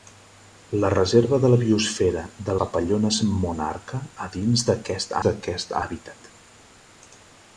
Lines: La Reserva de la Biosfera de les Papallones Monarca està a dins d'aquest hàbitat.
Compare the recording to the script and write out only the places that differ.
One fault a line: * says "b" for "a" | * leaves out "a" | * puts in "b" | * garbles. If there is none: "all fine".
* leaves out "les"
* leaves out "està"
* puts in "d'aquest"